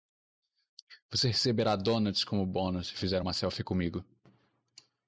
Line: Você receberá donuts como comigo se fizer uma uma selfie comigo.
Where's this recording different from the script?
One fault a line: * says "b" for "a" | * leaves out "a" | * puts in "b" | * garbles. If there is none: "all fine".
* says "bônus" for "comigo"
* leaves out "uma"